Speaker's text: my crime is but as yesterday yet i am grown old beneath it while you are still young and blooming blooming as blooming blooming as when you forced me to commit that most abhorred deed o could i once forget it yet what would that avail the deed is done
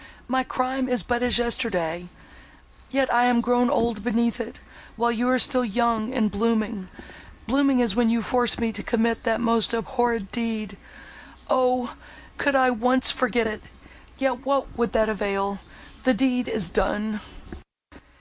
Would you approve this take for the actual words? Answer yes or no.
no